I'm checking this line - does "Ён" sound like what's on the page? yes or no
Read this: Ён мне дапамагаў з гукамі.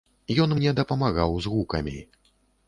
yes